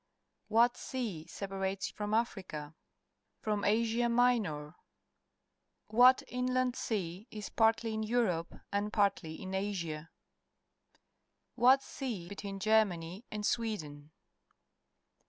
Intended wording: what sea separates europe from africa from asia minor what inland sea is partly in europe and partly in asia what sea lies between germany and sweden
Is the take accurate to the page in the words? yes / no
no